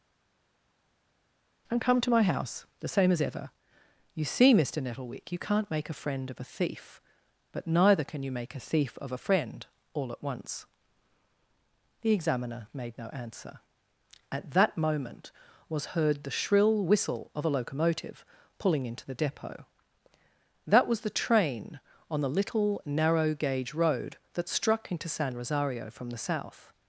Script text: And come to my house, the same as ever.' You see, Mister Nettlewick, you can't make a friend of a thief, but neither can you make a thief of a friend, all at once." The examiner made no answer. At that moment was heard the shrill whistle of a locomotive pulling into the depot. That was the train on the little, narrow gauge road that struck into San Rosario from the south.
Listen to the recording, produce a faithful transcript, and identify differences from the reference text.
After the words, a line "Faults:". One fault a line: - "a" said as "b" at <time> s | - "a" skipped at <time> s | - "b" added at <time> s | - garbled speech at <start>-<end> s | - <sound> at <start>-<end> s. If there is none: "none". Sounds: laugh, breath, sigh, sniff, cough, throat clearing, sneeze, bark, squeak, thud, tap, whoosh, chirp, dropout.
And come to my house, the same as ever.' You see, Mister Nettlewick, you can't make a friend of a thief, but neither can you make a thief of a friend, all at once." The examiner made no answer. At that moment was heard the shrill whistle of a locomotive pulling into the depot. That was the train on the little, narrow gauge road that struck into San Rosario from the south.
Faults:
none